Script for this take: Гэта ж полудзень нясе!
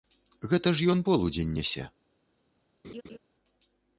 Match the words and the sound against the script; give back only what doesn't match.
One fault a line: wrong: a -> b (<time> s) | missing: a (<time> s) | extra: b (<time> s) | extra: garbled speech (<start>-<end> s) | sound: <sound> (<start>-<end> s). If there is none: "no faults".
extra: ён (0.9 s)
sound: laugh (2.8-3.2 s)